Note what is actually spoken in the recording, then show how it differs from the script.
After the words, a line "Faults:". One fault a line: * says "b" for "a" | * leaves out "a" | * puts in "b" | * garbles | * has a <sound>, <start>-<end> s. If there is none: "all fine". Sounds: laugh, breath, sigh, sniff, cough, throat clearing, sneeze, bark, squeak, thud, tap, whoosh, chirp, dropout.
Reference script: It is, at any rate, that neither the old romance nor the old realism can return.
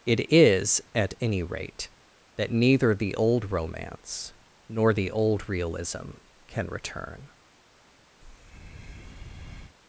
It is, at any rate, that neither the old romance nor the old realism can return.
Faults:
* has a breath, 8.2-9.8 s